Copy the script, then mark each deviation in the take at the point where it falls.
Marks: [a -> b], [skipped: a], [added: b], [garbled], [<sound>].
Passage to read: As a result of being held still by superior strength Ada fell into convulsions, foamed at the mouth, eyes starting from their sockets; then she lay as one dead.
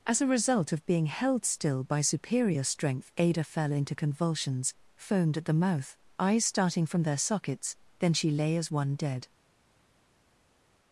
As a result of being held still by superior strength Ada fell into convulsions, foamed at the mouth, eyes starting from their sockets; then she lay as one dead.